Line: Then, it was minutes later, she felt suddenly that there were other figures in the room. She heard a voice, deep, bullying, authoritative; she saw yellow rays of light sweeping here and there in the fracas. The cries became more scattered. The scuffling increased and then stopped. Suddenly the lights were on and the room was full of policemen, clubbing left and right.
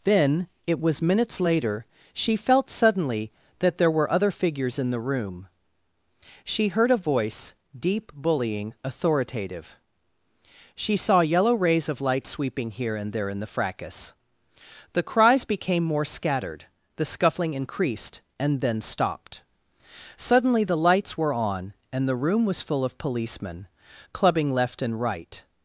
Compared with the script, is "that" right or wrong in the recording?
right